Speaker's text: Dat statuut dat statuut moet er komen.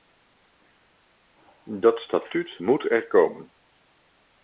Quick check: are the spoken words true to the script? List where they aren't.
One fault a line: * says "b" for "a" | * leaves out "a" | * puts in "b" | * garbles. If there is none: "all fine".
* leaves out "dat statuut"